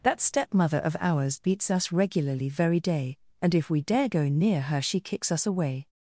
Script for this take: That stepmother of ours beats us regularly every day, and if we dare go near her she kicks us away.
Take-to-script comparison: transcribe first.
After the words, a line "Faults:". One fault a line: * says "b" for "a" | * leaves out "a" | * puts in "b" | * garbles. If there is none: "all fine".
That stepmother of ours beats us regularly very day, and if we dare go near her she kicks us away.
Faults:
* says "very" for "every"